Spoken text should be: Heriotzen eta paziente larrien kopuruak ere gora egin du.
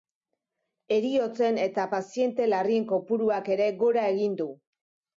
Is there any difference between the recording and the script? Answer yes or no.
no